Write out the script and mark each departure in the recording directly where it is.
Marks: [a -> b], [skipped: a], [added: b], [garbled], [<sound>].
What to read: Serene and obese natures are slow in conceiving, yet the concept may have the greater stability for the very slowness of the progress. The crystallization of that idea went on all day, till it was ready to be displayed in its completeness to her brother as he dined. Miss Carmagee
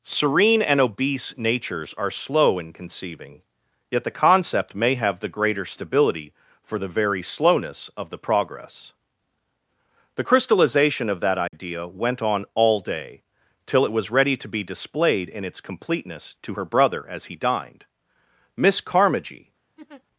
Serene and obese natures are slow in conceiving, yet the concept may have the greater stability for the very slowness of the progress. The crystallization of that idea [dropout] went on all day, till it was ready to be displayed in its completeness to her brother as he dined. Miss Carmagee [laugh]